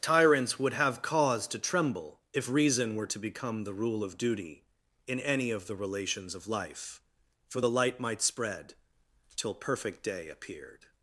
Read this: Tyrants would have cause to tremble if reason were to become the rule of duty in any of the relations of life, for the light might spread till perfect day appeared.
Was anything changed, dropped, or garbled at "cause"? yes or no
no